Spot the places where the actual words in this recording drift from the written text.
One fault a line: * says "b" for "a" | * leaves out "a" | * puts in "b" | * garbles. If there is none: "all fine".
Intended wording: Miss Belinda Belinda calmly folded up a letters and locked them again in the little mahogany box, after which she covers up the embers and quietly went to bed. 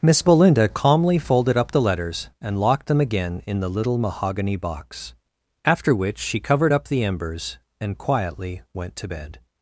* leaves out "Belinda"
* says "the" for "a"
* says "covered" for "covers"